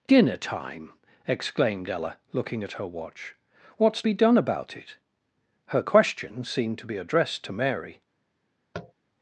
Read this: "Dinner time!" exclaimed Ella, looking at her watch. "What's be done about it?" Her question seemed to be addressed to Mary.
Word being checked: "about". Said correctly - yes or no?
yes